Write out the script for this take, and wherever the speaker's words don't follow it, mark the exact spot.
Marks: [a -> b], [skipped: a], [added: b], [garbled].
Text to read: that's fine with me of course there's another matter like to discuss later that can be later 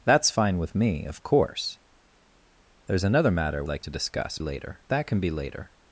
that's fine with me of course there's another matter like to discuss later that can be later